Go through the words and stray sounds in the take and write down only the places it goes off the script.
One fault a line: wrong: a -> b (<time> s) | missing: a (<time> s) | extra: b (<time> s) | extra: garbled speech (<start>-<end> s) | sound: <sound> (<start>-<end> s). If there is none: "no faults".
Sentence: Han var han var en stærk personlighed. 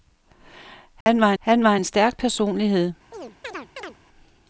sound: dropout (1.0-1.1 s)
sound: chirp (3.1-4.0 s)